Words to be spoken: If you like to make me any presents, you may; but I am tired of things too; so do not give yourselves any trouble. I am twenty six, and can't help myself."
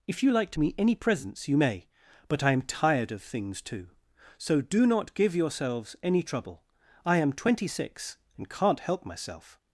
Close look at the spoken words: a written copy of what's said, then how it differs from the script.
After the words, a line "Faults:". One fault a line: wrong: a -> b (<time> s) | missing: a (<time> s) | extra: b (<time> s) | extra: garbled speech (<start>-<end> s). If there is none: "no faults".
If you like to me any presents, you may; but I am tired of things too; so do not give yourselves any trouble. I am twenty six, and can't help myself."
Faults:
missing: make (0.6 s)